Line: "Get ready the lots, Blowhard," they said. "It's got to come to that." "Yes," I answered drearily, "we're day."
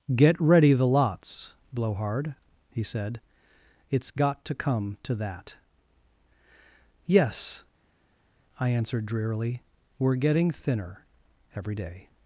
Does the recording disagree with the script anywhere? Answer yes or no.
yes